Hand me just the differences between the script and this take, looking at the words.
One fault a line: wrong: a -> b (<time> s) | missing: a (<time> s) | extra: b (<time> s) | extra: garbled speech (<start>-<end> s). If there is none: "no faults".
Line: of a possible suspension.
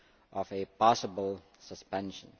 no faults